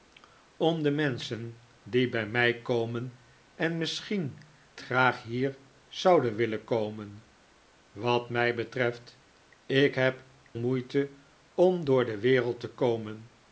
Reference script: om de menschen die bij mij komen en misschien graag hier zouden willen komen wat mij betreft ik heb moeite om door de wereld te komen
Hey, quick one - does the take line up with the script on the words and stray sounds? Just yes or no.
yes